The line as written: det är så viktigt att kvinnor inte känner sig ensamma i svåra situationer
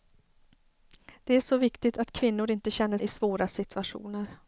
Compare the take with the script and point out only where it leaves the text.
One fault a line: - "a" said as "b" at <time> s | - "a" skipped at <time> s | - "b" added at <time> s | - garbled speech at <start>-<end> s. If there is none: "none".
- "sig ensamma" skipped at 3.0 s